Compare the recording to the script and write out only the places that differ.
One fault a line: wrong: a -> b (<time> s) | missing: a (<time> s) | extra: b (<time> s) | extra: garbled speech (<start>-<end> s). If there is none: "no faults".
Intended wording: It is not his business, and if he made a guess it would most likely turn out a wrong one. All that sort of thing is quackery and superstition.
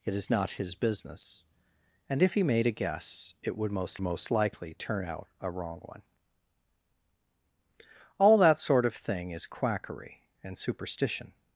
extra: most (4.0 s)